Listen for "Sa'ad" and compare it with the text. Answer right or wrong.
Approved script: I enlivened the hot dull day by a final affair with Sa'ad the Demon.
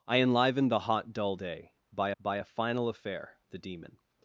wrong